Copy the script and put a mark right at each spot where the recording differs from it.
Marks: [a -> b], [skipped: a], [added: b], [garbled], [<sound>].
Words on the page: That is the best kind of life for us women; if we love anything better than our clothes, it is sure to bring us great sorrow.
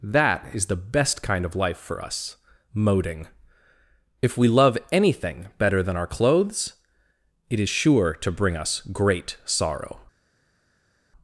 That is the best kind of life for us [women; -> moding] if we love anything better than our clothes, it is sure to bring us great sorrow.